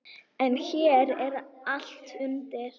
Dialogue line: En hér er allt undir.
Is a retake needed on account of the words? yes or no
no